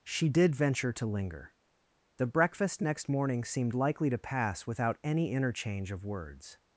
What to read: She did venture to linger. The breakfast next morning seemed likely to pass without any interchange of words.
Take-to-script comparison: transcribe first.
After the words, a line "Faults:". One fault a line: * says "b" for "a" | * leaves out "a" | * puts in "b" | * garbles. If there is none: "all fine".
She did venture to linger. The breakfast next morning seemed likely to pass without any interchange of words.
Faults:
all fine